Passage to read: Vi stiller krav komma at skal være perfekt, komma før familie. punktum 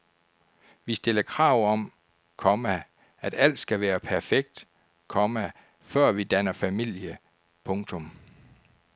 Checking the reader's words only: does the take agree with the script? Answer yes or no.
no